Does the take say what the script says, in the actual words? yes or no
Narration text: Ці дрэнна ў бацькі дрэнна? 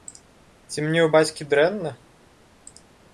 no